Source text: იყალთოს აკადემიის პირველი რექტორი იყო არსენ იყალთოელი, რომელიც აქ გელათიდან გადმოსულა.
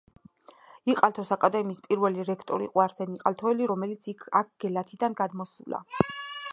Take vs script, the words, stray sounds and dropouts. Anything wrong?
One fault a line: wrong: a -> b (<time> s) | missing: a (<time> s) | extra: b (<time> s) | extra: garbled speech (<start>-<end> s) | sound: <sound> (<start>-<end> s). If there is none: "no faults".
no faults